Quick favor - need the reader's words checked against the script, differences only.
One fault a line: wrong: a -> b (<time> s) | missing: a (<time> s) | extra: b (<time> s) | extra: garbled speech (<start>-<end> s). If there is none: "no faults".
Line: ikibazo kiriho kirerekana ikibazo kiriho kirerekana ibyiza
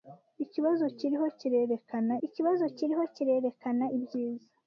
no faults